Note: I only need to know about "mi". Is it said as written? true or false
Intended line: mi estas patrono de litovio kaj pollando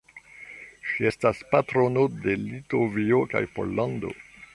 false